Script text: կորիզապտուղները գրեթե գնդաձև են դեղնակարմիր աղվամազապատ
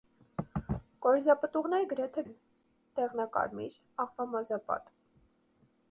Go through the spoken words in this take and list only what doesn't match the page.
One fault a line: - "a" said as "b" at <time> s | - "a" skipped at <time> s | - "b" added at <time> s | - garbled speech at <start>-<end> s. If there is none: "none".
- "գնդաձև" skipped at 2.3 s